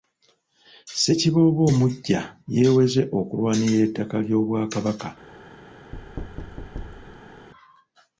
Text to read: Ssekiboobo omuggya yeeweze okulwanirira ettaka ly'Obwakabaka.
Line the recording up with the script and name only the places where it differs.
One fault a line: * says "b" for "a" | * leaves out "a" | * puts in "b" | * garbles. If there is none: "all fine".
all fine